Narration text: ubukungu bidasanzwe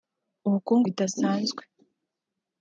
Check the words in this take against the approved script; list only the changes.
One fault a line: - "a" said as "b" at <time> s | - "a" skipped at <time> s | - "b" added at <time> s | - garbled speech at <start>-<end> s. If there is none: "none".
none